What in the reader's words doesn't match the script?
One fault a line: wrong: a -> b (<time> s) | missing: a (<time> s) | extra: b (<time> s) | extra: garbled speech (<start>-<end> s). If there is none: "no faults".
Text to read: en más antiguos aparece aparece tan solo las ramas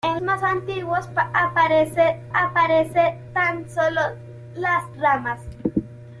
no faults